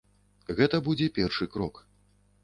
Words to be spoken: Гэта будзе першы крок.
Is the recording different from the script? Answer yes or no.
no